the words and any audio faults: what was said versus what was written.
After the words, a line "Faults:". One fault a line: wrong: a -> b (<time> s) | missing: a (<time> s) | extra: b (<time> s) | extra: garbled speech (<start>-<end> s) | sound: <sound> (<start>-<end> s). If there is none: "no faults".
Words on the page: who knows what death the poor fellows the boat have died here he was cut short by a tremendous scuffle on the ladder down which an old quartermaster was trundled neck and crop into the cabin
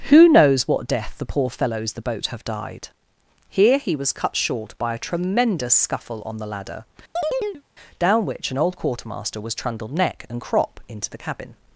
who knows what death the poor fellows the boat have died here he was cut short by a tremendous scuffle on the ladder down which an old quartermaster was trundled neck and crop into the cabin
Faults:
sound: chirp (7.2-7.6 s)